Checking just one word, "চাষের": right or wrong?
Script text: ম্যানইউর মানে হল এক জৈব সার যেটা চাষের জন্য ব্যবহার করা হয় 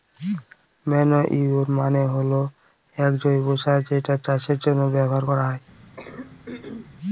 right